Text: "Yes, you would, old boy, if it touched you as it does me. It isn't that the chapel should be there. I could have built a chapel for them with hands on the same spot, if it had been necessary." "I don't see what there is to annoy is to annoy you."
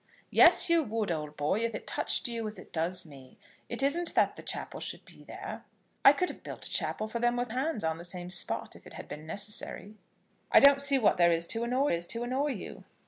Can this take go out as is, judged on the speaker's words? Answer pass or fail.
pass